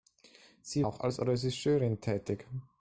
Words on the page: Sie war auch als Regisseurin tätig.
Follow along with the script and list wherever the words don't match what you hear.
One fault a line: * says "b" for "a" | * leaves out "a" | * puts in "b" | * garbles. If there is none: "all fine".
* leaves out "war"